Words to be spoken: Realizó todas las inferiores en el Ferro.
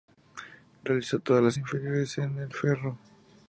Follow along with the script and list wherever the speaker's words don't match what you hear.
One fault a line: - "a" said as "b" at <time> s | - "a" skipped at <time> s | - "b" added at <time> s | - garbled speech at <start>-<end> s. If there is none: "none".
none